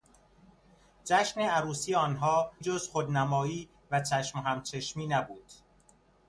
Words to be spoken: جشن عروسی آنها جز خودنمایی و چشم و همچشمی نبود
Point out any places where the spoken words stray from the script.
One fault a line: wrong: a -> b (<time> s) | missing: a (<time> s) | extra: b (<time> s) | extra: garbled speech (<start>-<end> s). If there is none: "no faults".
no faults